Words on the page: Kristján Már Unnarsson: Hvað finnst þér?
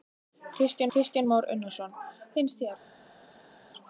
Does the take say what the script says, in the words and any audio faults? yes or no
no